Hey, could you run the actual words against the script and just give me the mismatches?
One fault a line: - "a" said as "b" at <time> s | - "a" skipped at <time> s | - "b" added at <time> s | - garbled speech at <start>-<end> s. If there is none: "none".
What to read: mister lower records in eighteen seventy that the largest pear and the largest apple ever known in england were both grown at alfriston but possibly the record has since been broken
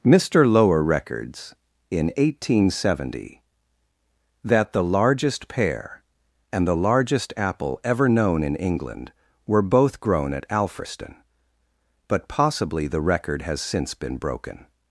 none